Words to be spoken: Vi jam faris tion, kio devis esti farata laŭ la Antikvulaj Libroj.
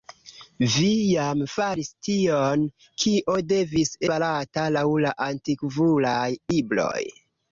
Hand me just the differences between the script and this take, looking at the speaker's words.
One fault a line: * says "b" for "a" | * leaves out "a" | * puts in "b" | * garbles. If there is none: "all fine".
* leaves out "esti"